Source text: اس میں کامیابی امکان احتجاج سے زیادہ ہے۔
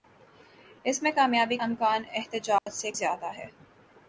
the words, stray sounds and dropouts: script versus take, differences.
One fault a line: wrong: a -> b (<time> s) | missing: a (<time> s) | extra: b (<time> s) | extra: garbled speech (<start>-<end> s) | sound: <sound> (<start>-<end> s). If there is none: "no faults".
sound: dropout (2.6-2.7 s)